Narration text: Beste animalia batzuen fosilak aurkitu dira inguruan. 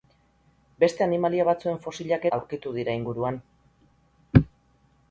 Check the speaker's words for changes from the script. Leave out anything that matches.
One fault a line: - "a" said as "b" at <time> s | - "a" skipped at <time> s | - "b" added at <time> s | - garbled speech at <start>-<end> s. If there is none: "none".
none